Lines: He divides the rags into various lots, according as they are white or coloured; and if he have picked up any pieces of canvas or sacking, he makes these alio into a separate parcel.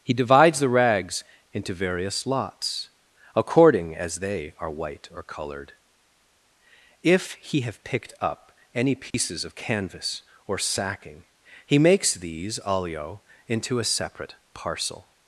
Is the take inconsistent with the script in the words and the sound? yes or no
yes